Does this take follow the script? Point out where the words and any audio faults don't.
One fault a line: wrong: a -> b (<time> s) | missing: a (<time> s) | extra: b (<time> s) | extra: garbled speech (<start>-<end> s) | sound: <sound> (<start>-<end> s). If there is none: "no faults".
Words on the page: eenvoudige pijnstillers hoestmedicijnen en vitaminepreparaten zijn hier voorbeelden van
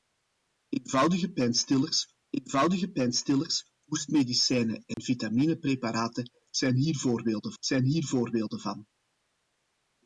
extra: eenvoudige pijnstillers (2.3 s)
sound: dropout (4.9-5.0 s)
extra: zijn hier voorbeelden (7.6 s)